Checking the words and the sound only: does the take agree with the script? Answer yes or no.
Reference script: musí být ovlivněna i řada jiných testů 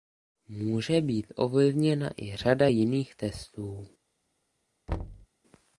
no